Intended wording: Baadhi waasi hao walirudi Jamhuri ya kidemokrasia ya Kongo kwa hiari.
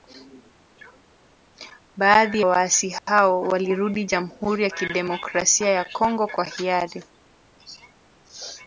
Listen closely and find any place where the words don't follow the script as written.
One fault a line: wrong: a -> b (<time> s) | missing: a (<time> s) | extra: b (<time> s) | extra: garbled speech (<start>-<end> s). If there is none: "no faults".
no faults